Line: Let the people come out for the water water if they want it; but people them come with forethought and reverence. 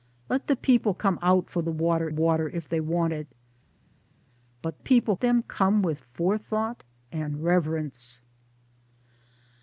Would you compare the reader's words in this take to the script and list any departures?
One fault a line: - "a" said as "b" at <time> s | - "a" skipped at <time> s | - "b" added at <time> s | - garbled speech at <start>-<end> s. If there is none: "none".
none